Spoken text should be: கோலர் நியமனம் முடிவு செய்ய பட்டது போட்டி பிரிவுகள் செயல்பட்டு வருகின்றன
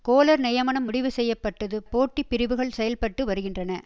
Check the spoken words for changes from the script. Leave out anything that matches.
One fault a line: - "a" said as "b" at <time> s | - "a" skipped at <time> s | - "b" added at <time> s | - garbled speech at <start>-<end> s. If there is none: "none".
none